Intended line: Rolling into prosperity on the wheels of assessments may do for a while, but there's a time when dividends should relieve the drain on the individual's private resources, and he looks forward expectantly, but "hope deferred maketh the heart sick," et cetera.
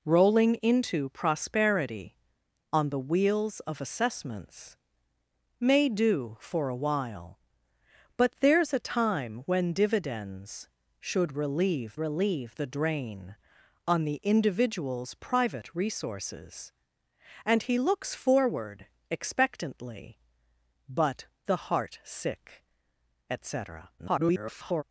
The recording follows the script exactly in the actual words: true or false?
false